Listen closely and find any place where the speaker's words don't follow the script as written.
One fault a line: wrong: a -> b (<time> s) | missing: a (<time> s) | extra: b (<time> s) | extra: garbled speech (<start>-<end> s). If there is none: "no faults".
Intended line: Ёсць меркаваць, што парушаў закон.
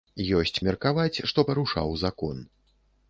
no faults